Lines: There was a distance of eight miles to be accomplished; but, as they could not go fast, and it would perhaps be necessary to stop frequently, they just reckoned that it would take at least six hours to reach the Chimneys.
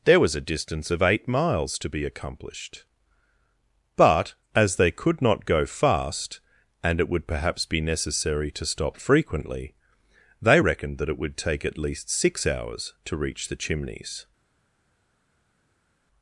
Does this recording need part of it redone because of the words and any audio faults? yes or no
yes